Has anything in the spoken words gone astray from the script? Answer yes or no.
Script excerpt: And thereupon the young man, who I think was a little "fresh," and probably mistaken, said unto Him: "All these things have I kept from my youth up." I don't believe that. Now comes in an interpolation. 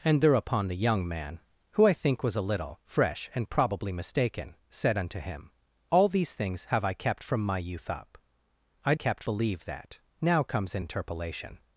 yes